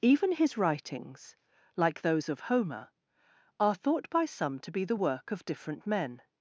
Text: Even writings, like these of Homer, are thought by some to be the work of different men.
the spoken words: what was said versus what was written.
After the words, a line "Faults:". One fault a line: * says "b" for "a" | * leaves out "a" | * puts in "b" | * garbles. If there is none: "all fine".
Even his writings, like those of Homer, are thought by some to be the work of different men.
Faults:
* puts in "his"
* says "those" for "these"